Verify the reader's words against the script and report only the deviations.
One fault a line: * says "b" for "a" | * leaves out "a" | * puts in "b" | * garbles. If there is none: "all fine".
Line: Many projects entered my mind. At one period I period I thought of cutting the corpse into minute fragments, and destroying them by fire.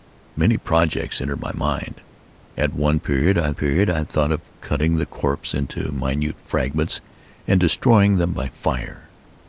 all fine